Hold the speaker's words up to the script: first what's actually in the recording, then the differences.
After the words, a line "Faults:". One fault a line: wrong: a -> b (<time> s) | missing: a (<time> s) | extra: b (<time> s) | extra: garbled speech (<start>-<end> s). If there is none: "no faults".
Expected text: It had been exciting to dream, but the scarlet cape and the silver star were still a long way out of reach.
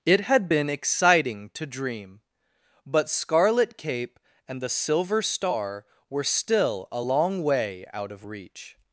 It had been exciting to dream, but scarlet cape and the silver star were still a long way out of reach.
Faults:
missing: the (3.1 s)